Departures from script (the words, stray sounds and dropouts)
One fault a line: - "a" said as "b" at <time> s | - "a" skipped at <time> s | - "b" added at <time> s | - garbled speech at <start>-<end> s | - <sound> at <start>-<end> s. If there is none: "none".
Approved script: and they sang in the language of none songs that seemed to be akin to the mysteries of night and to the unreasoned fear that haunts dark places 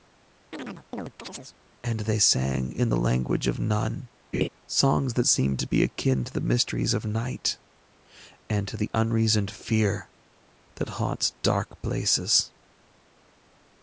- chirp at 0.5-1.6 s
- laugh at 4.3-4.5 s